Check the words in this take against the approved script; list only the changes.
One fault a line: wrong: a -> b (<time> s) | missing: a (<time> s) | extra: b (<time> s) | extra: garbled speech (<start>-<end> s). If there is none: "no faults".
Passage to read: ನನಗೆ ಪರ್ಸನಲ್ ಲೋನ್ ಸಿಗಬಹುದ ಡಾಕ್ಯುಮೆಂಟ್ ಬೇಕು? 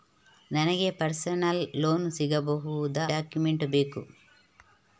no faults